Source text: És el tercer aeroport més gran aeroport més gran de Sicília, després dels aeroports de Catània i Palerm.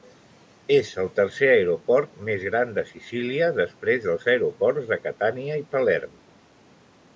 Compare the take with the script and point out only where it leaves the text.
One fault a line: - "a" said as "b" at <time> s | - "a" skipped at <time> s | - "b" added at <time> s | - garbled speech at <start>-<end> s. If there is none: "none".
- "aeroport més gran" skipped at 2.7 s